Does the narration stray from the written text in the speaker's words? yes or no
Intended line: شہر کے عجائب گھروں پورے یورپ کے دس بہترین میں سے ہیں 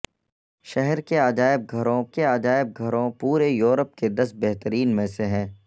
yes